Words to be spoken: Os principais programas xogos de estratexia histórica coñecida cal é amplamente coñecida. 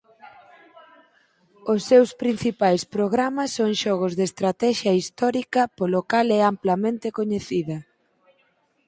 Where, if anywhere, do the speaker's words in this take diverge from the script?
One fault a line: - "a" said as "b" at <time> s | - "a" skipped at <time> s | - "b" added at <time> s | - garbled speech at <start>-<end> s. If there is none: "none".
- "seus" added at 1.9 s
- "son" added at 3.6 s
- "coñecida" said as "polo" at 5.8 s